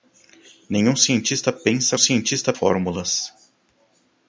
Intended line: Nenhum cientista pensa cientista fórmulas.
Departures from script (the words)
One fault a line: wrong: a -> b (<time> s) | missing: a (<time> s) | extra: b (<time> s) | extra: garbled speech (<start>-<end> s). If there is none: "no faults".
no faults